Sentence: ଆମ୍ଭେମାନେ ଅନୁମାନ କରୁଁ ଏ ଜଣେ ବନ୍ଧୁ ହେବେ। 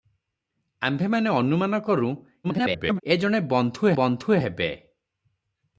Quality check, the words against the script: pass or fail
fail